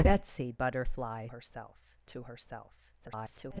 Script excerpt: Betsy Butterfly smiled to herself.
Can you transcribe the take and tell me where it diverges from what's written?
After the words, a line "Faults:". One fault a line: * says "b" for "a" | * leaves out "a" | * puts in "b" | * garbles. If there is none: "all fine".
Betsy Butterfly herself to herself. [garbled]
Faults:
* says "herself" for "smiled"
* garbles